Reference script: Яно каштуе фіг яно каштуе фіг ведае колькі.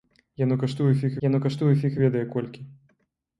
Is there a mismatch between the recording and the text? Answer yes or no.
no